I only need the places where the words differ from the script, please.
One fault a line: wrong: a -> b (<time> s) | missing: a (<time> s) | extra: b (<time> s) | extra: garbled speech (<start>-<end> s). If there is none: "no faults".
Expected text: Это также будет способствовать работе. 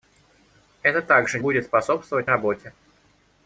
no faults